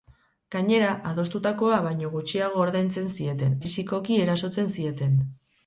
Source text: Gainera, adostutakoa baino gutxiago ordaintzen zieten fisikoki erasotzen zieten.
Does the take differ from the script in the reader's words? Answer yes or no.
no